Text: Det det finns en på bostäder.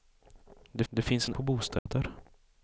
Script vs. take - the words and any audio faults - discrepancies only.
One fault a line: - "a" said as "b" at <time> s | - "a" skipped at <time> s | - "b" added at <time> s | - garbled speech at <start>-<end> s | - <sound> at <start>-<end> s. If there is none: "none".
- dropout at 1.8-1.9 s